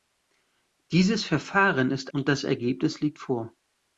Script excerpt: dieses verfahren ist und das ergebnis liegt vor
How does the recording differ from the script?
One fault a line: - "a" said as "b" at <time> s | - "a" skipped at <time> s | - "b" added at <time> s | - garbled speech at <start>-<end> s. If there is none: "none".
none